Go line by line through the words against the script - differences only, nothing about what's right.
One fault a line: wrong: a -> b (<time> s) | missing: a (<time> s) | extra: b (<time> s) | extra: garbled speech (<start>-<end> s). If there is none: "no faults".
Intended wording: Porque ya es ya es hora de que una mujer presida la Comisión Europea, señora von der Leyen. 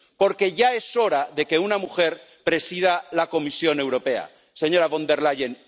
missing: ya es (0.9 s)